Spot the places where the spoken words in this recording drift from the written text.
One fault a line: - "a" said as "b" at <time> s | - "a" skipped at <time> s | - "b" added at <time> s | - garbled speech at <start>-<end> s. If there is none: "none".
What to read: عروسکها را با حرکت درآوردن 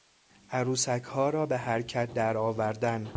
- "با" said as "به" at 1.4 s